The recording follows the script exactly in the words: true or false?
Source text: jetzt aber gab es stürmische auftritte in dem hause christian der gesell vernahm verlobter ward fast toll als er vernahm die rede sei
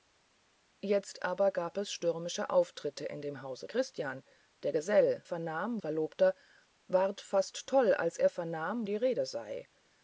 true